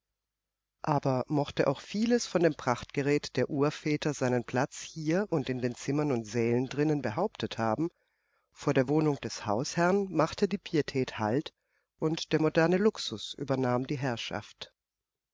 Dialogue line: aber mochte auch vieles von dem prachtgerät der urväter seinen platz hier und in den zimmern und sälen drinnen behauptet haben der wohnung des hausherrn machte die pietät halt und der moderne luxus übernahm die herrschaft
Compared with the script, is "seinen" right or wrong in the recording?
right